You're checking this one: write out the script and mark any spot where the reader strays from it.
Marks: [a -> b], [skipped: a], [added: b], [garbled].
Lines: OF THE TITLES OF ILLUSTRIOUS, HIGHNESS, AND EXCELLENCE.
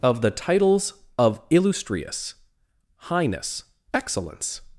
OF THE TITLES OF ILLUSTRIOUS, HIGHNESS, [skipped: AND] EXCELLENCE.